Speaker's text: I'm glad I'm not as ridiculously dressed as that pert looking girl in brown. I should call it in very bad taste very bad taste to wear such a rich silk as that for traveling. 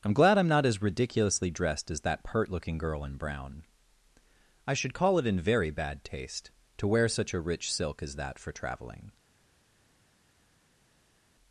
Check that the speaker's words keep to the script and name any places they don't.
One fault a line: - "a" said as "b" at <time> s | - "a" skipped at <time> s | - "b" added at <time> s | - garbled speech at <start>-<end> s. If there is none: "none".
- "very bad taste" skipped at 6.5 s